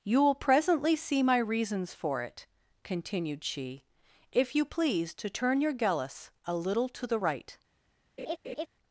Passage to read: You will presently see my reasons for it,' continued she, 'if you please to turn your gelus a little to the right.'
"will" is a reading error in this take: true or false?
false